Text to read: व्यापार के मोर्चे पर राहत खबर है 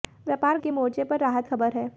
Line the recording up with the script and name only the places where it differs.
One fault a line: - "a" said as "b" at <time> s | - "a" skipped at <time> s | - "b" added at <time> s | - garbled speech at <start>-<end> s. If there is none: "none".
none